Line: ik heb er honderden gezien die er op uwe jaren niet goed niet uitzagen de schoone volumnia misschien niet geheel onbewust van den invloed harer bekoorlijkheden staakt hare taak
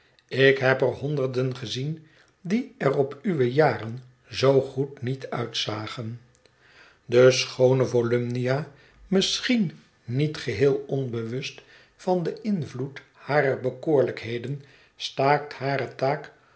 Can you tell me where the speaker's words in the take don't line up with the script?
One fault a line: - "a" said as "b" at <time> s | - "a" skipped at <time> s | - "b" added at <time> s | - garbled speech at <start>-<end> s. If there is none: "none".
- "niet" said as "zoo" at 4.3 s